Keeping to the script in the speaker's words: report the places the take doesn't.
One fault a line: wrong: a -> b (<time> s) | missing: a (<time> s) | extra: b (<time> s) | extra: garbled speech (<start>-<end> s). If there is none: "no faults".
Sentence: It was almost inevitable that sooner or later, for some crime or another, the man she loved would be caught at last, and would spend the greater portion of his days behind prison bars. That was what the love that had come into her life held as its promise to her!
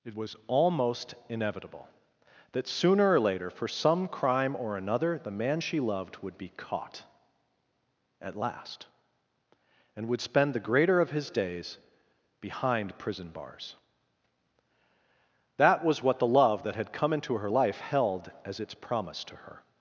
missing: portion (11.0 s)